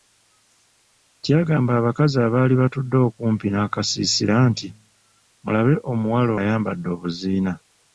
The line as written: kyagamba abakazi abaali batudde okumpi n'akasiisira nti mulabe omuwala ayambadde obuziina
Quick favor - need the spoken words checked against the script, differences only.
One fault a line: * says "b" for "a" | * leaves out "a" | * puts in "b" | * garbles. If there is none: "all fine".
all fine